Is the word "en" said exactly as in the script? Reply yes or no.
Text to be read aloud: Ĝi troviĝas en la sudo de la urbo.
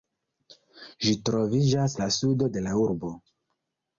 no